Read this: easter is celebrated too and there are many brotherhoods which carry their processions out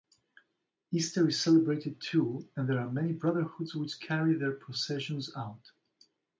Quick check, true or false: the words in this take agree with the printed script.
true